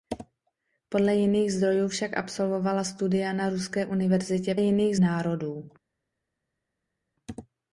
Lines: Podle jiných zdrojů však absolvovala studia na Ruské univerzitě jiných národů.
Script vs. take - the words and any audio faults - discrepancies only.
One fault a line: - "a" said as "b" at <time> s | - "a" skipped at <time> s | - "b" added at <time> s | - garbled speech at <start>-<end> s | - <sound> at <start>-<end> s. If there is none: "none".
none